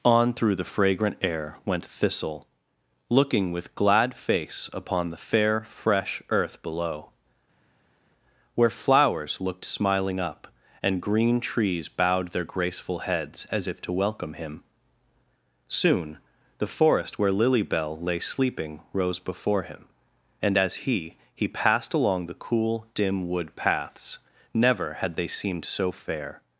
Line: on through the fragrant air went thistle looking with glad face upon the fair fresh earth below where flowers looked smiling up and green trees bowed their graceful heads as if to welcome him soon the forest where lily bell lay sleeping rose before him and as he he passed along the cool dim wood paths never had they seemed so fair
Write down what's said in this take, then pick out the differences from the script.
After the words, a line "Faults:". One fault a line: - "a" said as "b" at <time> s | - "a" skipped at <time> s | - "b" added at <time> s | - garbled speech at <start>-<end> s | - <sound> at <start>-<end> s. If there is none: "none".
on through the fragrant air went thistle looking with glad face upon the fair fresh earth below where flowers looked smiling up and green trees bowed their graceful heads as if to welcome him soon the forest where lily bell lay sleeping rose before him and as he he passed along the cool dim wood paths never had they seemed so fair
Faults:
none